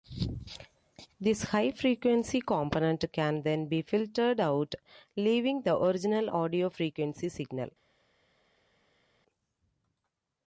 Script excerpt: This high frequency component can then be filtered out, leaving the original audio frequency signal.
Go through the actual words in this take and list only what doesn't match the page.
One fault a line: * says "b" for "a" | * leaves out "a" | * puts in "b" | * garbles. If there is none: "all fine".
all fine